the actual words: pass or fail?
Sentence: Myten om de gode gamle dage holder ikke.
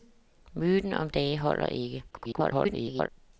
fail